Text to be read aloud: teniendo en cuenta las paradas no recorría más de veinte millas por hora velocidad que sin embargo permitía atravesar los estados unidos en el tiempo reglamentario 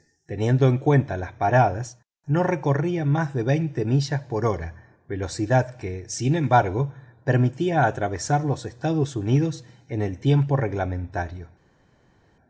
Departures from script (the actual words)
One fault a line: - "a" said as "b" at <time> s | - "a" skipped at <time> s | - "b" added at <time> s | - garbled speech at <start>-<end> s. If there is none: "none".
none